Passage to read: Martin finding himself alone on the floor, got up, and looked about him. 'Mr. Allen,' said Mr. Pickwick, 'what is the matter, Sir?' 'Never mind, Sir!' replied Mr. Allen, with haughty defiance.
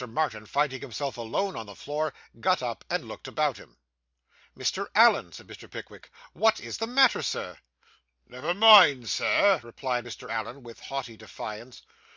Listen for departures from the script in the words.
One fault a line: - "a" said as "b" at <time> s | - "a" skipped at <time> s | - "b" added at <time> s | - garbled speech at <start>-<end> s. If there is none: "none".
none